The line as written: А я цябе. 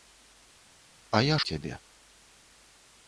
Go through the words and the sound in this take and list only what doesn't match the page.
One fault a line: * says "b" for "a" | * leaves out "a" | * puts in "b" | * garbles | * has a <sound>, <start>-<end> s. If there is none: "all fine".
all fine